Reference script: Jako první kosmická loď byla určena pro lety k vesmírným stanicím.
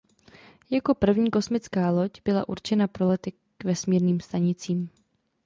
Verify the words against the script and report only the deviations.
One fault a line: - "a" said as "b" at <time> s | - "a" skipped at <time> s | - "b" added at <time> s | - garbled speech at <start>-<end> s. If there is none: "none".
none